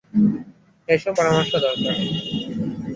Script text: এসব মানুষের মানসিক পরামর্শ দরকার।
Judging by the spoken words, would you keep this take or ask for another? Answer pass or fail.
fail